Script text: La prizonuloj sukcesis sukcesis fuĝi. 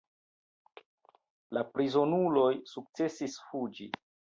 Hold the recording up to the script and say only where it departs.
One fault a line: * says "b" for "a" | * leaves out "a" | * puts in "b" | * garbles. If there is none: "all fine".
* leaves out "sukcesis"